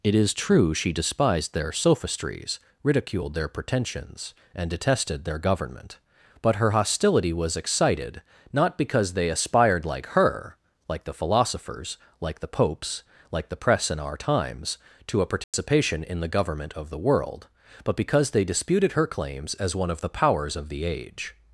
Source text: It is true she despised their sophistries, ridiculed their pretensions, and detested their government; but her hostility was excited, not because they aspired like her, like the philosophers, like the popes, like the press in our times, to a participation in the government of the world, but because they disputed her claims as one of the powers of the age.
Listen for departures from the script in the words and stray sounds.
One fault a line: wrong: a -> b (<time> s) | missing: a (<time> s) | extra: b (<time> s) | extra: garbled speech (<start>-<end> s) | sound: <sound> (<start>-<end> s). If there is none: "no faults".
sound: dropout (15.4-15.5 s)